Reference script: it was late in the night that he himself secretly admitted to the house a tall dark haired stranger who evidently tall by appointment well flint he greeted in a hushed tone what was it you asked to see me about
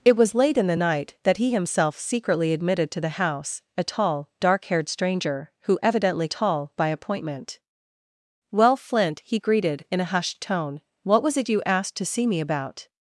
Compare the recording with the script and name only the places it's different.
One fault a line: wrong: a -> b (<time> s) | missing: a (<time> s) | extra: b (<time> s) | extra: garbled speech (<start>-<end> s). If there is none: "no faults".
no faults